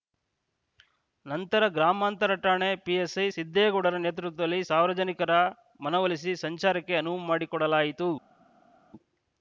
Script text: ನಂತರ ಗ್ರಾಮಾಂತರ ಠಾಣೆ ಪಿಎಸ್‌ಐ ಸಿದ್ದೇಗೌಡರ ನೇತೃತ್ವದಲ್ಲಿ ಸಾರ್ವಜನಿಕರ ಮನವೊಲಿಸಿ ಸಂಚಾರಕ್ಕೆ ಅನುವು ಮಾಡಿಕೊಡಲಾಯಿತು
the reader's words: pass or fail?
pass